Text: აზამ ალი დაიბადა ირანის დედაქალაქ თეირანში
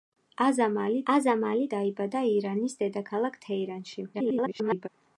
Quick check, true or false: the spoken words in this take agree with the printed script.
false